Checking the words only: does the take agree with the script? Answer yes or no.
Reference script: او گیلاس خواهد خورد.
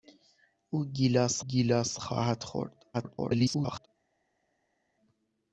no